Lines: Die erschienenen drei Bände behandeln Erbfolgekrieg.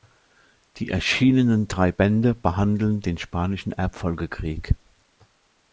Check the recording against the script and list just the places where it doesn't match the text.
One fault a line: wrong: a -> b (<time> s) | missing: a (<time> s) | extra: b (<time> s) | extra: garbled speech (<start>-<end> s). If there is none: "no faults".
extra: den Spanischen (3.0 s)